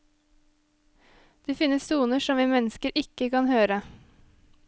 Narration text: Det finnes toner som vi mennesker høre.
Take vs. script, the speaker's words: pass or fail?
fail